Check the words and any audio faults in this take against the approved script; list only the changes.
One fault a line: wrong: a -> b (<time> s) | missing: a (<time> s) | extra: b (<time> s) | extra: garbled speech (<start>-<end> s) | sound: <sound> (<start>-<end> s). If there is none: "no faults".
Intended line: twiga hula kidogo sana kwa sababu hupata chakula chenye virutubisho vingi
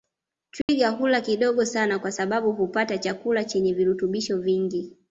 sound: dropout (0.6-0.7 s)